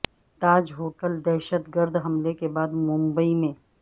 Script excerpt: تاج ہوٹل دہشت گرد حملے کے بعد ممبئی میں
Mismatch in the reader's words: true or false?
false